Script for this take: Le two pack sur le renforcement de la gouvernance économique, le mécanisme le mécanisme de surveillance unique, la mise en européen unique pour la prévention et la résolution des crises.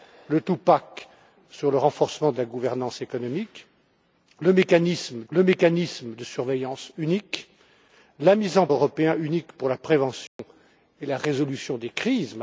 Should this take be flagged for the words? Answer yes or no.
no